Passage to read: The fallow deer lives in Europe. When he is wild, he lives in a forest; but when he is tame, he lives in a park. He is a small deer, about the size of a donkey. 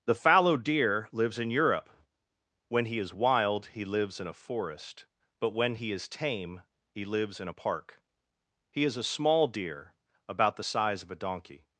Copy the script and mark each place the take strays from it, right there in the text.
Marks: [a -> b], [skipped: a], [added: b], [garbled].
The fallow deer lives in Europe. When he is wild, he lives in a forest; but when he is tame, he lives in a park. He is a small deer, about the size of a donkey.